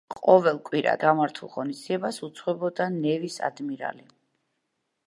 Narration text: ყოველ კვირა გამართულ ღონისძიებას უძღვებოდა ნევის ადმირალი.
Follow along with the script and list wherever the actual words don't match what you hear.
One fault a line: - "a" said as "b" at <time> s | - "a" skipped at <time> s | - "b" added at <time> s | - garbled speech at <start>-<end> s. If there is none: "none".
none